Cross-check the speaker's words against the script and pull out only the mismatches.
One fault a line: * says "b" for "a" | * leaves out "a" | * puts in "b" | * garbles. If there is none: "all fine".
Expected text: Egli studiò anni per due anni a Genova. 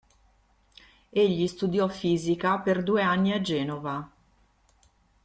* says "fisica" for "anni"